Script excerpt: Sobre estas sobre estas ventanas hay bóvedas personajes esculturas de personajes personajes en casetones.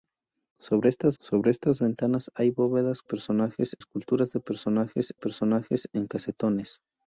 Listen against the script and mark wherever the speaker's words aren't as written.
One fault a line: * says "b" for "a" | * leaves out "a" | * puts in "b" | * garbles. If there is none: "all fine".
all fine